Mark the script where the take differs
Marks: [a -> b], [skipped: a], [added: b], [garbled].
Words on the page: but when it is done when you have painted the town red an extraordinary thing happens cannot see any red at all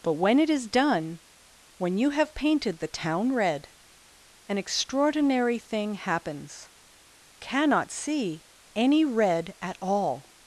but when it is done when you have painted the town red an extraordinary thing happens cannot see any red at all